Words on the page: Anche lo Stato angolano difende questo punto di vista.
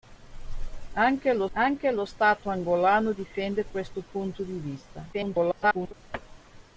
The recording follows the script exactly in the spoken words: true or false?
false